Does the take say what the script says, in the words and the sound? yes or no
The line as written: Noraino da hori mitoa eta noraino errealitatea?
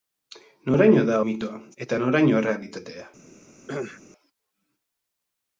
no